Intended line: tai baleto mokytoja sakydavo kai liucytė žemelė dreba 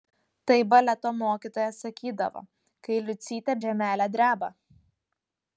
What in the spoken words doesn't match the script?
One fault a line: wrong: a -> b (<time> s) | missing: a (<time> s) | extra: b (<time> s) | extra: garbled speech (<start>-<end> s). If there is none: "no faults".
no faults